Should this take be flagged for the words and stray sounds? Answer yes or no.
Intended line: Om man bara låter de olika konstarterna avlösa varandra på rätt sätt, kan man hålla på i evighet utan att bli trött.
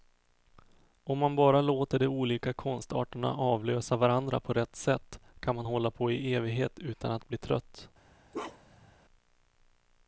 yes